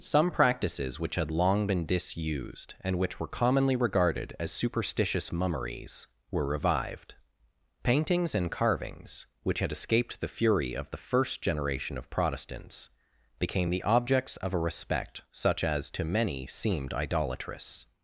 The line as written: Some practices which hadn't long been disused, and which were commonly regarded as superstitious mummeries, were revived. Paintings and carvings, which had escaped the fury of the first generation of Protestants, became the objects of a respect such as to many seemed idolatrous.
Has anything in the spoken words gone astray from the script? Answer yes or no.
yes